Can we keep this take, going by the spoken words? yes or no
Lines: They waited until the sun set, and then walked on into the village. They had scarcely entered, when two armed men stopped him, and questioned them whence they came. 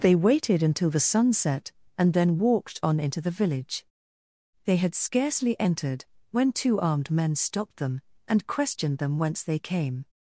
no